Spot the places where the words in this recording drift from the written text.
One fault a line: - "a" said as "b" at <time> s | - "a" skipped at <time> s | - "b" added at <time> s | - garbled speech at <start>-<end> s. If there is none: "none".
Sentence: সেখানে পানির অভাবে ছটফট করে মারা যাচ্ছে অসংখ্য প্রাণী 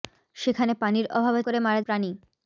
- "ছটফট" skipped at 1.4 s
- "যাচ্ছে অসংখ্য" skipped at 1.8 s